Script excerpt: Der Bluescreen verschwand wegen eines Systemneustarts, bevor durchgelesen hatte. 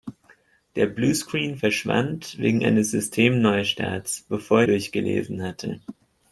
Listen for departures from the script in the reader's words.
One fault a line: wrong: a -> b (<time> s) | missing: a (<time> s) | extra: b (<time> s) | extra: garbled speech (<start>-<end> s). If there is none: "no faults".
no faults